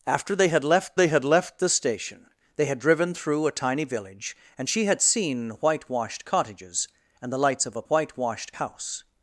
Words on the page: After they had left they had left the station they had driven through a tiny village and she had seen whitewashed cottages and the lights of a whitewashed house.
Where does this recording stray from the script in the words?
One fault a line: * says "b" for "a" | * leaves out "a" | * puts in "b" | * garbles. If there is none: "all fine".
all fine